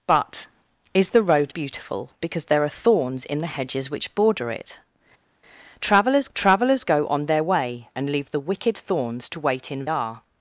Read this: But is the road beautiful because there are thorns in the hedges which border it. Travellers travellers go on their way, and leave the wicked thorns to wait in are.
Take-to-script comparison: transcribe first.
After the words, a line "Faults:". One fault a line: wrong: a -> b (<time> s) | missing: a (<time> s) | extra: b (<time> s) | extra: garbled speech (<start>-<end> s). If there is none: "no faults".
But is the road beautiful because there are thorns in the hedges which border it. Travellers travellers go on their way, and leave the wicked thorns to wait in are.
Faults:
no faults